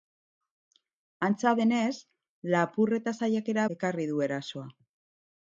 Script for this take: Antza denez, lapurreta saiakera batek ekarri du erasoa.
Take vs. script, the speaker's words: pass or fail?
fail